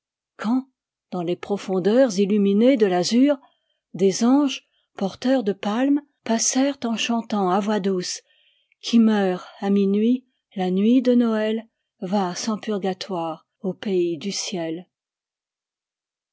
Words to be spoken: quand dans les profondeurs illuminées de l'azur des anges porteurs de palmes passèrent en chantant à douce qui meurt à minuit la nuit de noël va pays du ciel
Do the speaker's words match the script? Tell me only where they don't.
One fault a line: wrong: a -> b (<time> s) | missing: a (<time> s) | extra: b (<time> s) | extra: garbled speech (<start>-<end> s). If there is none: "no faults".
extra: voix (7.6 s)
extra: sans purgatoire au (12.3 s)